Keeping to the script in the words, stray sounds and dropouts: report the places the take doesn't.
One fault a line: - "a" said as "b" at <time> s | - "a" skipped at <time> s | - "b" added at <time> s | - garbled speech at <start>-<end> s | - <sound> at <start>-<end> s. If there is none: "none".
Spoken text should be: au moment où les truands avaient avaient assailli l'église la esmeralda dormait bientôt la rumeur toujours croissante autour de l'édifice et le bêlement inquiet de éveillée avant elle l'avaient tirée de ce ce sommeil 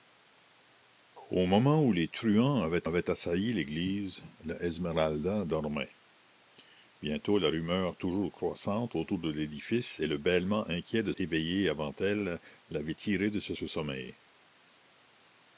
none